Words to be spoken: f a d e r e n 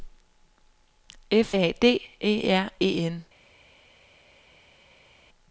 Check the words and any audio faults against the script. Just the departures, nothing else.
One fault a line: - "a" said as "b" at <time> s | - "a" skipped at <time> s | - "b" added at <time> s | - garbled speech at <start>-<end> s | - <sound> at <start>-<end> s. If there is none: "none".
none